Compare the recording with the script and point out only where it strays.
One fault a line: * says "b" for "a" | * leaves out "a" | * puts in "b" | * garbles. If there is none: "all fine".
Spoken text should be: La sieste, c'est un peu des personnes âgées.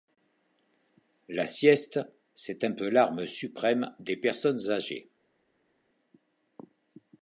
* puts in "l'arme suprême"